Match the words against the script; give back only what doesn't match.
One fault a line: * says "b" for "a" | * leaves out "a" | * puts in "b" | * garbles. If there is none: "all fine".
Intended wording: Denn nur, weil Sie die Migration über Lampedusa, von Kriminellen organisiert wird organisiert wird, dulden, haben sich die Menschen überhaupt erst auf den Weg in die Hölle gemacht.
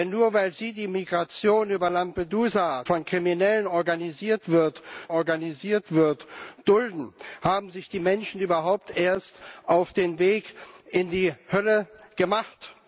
all fine